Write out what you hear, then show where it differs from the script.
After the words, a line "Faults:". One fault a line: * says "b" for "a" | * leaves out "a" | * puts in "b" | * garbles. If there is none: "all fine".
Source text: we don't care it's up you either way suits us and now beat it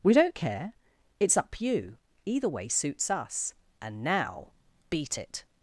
we don't care it's up you either way suits us and now beat it
Faults:
all fine